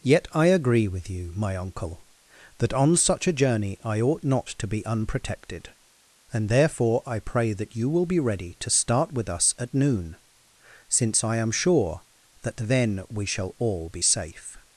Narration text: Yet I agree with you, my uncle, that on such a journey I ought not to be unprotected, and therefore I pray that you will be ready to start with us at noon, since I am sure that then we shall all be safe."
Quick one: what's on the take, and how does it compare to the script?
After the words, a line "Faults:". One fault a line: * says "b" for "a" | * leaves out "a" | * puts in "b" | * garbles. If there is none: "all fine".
Yet I agree with you, my uncle, that on such a journey I ought not to be unprotected, and therefore I pray that you will be ready to start with us at noon, since I am sure that then we shall all be safe."
Faults:
all fine